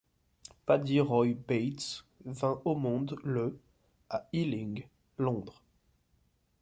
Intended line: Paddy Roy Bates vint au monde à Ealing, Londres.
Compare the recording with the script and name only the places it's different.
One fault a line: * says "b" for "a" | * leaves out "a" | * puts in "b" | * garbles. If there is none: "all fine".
* puts in "le"